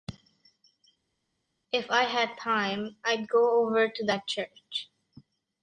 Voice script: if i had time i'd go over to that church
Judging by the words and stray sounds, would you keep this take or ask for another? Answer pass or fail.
pass